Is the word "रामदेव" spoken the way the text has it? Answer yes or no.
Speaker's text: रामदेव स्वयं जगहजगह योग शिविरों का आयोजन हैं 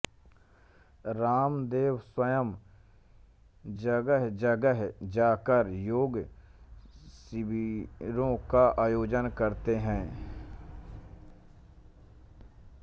yes